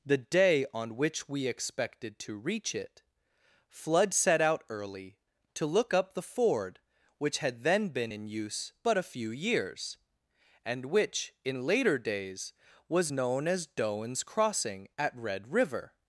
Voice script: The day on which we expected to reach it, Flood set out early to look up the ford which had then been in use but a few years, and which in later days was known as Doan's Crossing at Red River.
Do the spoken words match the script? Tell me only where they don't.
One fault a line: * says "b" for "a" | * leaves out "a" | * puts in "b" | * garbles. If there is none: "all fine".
all fine